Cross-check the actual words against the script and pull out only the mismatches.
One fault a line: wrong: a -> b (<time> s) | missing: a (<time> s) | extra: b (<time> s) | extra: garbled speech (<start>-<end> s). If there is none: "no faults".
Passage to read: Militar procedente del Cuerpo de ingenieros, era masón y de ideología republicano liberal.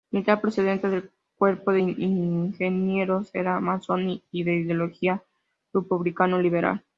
no faults